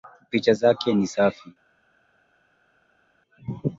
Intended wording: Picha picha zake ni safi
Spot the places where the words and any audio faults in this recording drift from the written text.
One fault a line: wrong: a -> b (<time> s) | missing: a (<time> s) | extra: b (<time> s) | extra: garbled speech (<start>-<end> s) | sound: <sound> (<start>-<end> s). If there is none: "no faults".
missing: picha (0.5 s)